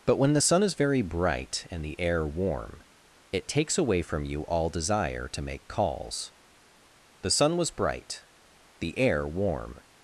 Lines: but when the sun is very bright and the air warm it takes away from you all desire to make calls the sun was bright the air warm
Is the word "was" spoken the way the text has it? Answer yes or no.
yes